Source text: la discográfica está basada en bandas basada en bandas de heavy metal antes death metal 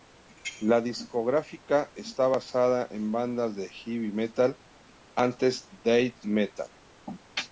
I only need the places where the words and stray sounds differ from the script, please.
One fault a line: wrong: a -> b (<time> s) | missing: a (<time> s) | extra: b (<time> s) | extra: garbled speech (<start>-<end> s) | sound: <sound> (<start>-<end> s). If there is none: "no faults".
missing: basada en bandas (3.5 s)